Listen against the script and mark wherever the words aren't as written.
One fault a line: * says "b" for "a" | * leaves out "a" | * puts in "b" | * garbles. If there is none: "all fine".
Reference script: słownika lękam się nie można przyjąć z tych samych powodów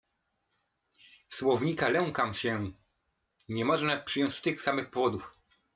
all fine